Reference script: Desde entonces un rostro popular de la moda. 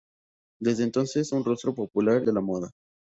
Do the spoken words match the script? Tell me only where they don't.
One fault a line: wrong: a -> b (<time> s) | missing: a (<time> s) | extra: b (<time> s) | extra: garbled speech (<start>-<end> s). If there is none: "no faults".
no faults